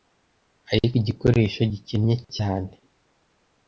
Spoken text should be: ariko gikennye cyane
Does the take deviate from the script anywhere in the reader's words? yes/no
yes